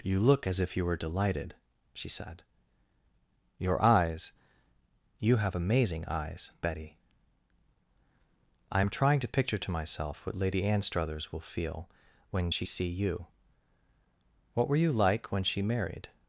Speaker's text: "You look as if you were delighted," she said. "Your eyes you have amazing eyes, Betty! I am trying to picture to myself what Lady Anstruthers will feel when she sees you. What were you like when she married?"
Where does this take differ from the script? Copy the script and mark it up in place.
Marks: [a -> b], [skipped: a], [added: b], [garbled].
"You look as if you were delighted," she said. "Your eyes you have amazing eyes, Betty! I am trying to picture to myself what Lady Anstruthers will feel when she [sees -> see] you. What were you like when she married?"